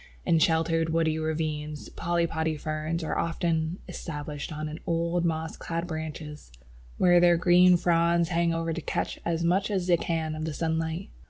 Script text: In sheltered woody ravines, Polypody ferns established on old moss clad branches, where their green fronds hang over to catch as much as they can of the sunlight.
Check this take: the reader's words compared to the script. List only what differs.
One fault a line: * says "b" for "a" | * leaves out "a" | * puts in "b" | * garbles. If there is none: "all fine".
* puts in "are often"